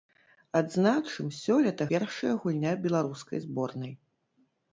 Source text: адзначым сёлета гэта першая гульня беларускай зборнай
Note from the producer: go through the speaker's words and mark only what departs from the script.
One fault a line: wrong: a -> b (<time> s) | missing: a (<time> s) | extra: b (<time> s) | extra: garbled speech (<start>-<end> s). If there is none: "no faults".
missing: гэта (1.8 s)